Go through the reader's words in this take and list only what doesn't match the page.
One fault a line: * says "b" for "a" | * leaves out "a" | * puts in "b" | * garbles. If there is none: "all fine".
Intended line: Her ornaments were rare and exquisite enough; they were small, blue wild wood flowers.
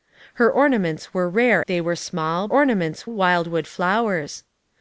* leaves out "and exquisite enough"
* says "ornaments" for "blue"